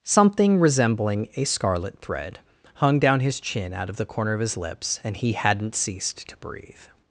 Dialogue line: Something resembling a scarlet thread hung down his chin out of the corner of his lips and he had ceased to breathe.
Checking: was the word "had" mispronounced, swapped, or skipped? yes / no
yes